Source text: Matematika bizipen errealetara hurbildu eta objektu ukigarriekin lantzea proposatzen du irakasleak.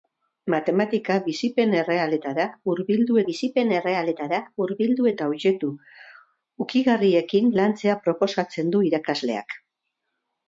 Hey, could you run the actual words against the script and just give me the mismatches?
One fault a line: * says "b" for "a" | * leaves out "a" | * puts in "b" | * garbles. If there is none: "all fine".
* puts in "bizipen errealetara hurbildu"